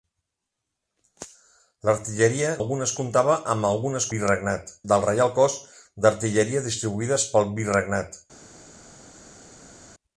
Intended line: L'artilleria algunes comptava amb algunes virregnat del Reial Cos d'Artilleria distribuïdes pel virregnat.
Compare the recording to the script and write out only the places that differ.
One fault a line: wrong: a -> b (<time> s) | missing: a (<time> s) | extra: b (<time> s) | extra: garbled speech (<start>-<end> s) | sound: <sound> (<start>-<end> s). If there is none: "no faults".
no faults